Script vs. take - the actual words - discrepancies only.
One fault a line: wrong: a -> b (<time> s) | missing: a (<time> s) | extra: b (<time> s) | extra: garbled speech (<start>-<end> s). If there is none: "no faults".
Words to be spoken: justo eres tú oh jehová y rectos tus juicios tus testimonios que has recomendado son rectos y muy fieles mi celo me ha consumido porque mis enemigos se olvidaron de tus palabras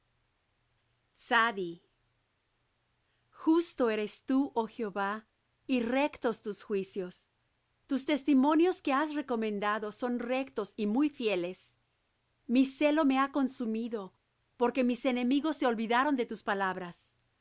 no faults